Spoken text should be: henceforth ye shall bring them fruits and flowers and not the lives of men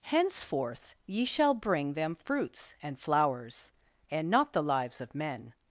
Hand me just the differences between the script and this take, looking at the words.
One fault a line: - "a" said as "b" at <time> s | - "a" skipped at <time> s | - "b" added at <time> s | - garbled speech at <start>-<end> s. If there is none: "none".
none